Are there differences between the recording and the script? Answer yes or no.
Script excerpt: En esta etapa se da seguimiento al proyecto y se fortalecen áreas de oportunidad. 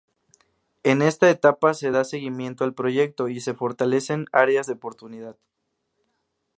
no